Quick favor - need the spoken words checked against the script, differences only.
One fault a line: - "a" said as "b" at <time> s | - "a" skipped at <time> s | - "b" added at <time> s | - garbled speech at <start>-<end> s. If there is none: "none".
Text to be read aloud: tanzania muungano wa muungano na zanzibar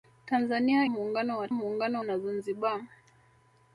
none